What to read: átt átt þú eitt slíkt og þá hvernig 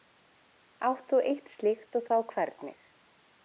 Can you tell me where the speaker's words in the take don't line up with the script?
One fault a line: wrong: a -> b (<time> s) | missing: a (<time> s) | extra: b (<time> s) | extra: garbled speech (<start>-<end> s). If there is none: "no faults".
missing: átt (1.1 s)